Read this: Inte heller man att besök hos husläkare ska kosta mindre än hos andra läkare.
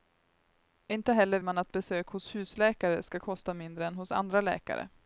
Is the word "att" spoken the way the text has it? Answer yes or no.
yes